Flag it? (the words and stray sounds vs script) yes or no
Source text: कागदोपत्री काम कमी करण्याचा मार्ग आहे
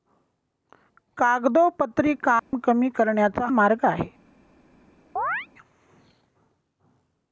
yes